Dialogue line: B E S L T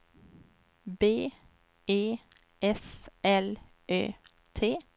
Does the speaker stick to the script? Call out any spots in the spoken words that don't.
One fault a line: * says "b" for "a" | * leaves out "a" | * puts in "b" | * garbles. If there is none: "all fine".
* puts in "Ö"